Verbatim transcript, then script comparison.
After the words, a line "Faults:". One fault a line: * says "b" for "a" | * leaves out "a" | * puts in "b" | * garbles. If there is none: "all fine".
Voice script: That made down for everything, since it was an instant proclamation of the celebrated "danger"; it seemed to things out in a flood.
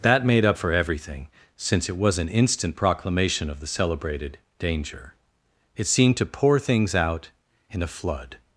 That made up for everything, since it was an instant proclamation of the celebrated "danger"; it seemed to pour things out in a flood.
Faults:
* says "up" for "down"
* puts in "pour"